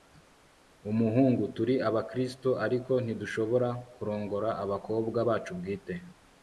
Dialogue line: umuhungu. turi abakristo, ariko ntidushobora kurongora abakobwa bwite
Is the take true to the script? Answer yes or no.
no